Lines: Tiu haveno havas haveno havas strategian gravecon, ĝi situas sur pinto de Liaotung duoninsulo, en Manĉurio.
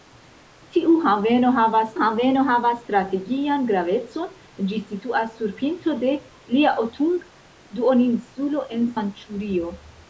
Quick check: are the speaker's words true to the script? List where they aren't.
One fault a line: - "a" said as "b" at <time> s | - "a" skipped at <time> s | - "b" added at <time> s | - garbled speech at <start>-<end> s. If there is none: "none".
none